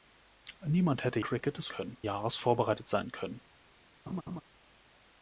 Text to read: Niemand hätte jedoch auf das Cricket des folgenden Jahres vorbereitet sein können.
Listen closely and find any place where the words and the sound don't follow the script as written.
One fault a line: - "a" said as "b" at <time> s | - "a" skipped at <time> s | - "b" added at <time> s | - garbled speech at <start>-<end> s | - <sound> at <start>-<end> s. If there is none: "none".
- "jedoch auf das" skipped at 1.2 s
- "folgenden" said as "können" at 1.7 s
- laugh at 4.1-4.4 s